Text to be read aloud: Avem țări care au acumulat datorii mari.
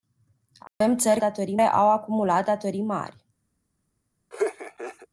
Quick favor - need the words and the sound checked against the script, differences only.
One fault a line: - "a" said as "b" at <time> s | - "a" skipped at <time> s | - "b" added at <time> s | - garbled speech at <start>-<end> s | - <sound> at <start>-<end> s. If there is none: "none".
- dropout at 0.7-0.8 s
- "care" said as "datorii" at 1.2 s
- laugh at 4.3-5.1 s